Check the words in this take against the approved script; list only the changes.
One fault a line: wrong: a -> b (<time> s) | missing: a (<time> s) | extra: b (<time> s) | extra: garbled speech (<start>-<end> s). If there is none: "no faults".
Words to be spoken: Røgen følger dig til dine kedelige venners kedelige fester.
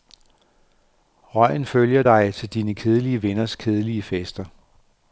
no faults